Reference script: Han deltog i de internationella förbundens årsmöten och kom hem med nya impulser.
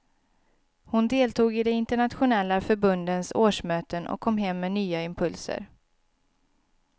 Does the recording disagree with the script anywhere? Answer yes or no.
yes